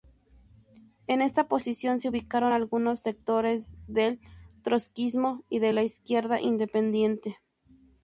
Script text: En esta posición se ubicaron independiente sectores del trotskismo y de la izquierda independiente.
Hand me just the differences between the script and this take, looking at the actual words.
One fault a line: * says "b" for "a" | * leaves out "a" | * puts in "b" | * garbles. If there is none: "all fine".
* says "algunos" for "independiente"